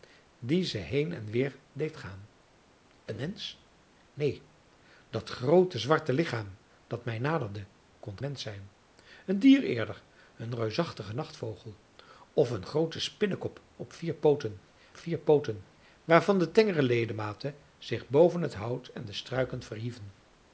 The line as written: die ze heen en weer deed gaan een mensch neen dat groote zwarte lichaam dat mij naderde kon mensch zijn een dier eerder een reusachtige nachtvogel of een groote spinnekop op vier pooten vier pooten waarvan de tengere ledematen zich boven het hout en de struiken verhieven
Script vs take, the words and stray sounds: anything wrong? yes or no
no